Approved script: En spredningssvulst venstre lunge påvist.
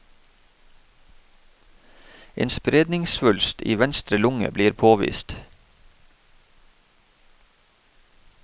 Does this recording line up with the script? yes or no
no